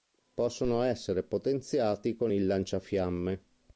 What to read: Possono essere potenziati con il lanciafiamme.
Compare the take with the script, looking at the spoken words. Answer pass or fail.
pass